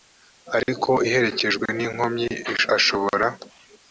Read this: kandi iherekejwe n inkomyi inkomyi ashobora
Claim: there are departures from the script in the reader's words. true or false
true